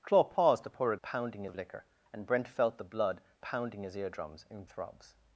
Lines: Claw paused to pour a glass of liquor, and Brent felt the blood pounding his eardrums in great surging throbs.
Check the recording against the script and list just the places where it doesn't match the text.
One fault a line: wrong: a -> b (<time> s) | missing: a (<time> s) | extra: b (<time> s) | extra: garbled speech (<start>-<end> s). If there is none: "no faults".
wrong: glass -> pounding (1.0 s)
missing: great surging (4.7 s)